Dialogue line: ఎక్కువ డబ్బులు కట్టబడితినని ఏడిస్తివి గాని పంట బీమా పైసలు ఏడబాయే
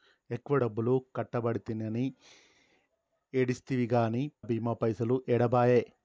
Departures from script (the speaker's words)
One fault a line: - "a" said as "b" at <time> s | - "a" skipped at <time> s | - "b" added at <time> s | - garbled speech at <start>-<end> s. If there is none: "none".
- "పంట" skipped at 4.3 s